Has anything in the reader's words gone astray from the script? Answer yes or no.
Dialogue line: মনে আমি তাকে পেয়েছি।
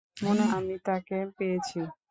no